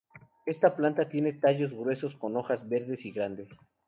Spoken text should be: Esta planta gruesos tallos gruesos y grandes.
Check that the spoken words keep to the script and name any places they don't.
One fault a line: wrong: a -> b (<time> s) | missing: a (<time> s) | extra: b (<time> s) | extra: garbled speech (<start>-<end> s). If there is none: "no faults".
wrong: gruesos -> tiene (1.1 s)
extra: con hojas verdes (2.1 s)